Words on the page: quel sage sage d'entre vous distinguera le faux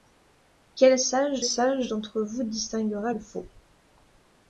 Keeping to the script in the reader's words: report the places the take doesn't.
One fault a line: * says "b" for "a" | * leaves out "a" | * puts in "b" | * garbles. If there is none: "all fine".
all fine